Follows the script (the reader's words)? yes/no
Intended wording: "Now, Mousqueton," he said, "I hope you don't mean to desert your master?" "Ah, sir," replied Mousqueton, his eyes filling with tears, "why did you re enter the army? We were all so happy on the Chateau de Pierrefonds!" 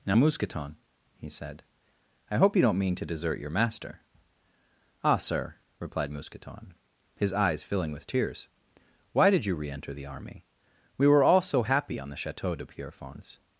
yes